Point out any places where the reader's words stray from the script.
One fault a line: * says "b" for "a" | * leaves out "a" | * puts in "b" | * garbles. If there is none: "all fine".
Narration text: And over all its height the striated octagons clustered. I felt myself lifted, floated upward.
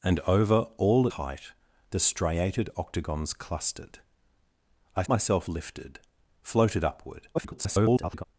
* leaves out "its"
* leaves out "felt"
* garbles